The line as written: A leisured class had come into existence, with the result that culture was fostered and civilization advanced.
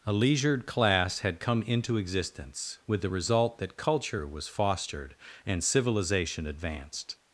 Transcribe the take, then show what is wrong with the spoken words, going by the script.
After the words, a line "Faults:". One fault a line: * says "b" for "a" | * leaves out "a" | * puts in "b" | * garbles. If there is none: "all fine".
A leisured class had come into existence, with the result that culture was fostered and civilization advanced.
Faults:
all fine